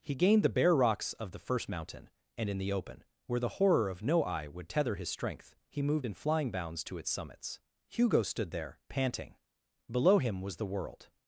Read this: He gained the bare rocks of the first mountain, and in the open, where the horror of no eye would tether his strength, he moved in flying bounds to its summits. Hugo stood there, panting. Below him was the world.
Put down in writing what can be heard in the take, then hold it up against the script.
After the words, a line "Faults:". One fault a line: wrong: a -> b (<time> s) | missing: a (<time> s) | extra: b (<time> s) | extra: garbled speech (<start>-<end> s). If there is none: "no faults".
He gained the bare rocks of the first mountain, and in the open, where the horror of no eye would tether his strength, he moved in flying bounds to its summits. Hugo stood there, panting. Below him was the world.
Faults:
no faults